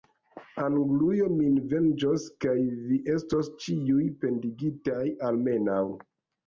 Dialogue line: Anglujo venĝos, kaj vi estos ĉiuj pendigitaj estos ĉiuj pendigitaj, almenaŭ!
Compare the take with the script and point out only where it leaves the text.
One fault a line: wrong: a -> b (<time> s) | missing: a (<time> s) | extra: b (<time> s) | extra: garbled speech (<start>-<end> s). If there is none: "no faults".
extra: min (1.3 s)
missing: estos ĉiuj pendigitaj (5.1 s)